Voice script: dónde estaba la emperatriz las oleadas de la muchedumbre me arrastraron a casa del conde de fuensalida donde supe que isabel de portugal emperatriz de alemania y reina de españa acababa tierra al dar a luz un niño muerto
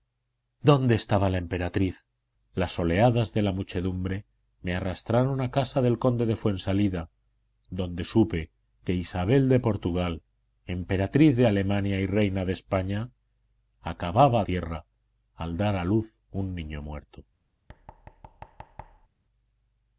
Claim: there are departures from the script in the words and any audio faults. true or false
true